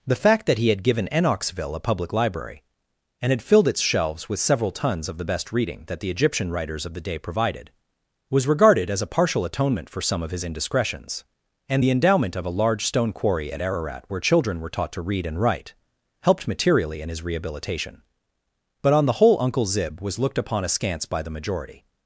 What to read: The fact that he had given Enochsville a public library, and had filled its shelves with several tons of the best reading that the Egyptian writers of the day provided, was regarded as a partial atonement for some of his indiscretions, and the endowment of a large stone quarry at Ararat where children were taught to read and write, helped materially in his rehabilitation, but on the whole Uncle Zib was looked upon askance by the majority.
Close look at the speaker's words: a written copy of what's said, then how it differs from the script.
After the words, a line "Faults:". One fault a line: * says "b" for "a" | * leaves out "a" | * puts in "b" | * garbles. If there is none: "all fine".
The fact that he had given Enochsville a public library, and had filled its shelves with several tons of the best reading that the Egyptian writers of the day provided, was regarded as a partial atonement for some of his indiscretions, and the endowment of a large stone quarry at Ararat where children were taught to read and write, helped materially in his rehabilitation, but on the whole Uncle Zib was looked upon askance by the majority.
Faults:
all fine